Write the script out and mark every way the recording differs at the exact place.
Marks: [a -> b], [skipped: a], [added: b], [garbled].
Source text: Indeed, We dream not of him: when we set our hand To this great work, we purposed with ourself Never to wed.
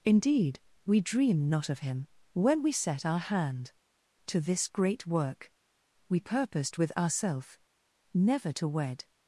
Indeed, We dream not of him: when we set our hand To this great work, we purposed with ourself Never to wed.